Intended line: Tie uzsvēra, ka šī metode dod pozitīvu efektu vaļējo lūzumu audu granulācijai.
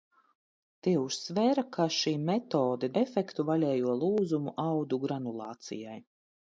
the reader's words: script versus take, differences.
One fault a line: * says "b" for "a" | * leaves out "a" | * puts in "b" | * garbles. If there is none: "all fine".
* leaves out "dod pozitīvu"